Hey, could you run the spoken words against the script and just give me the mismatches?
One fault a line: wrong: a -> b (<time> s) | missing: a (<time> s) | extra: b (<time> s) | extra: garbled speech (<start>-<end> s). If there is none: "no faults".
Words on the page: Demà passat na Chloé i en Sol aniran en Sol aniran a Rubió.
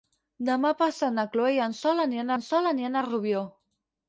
no faults